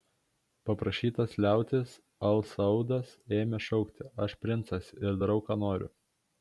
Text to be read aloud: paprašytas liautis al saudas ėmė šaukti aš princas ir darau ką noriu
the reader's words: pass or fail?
pass